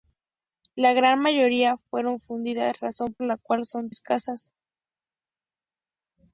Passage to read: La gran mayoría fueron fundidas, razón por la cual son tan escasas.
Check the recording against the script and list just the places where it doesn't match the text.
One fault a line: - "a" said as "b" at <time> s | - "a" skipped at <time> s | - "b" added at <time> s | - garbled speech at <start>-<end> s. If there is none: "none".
- "por" skipped at 3.1 s
- "tan" skipped at 3.9 s